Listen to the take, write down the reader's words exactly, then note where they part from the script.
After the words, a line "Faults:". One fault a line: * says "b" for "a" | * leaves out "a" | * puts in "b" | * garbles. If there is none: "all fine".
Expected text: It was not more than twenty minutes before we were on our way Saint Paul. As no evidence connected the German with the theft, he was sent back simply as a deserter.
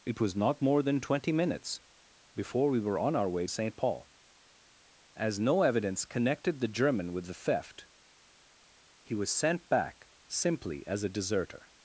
It was not more than twenty minutes before we were on our way Saint Paul. As no evidence connected the German with the theft, he was sent back simply as a deserter.
Faults:
all fine